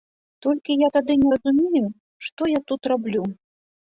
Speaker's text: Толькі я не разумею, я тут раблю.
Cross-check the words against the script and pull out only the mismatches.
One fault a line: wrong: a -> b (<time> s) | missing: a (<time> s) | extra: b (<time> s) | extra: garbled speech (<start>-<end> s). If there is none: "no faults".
extra: тады (0.9 s)
extra: што (2.3 s)